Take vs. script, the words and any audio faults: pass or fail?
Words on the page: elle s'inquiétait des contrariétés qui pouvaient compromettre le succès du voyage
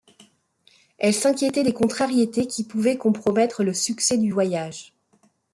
pass